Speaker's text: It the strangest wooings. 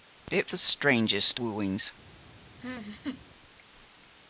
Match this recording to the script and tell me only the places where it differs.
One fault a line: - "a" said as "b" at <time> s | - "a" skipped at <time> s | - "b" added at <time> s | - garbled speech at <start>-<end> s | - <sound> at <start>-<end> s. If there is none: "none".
- laugh at 2.6-3.2 s